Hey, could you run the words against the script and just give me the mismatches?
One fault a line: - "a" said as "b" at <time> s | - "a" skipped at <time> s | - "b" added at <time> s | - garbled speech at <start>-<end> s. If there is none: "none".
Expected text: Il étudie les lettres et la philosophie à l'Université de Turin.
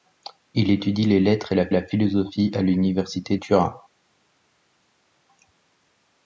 - "la" added at 1.7 s
- "de" skipped at 3.4 s